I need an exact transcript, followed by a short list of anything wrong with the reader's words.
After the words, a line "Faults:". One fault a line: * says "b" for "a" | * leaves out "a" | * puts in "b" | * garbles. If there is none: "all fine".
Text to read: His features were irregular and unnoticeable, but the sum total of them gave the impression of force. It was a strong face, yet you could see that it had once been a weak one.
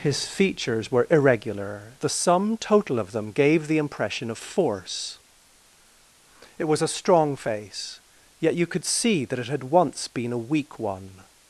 His features were irregular the sum total of them gave the impression of force. It was a strong face, yet you could see that it had once been a weak one.
Faults:
* leaves out "and unnoticeable but"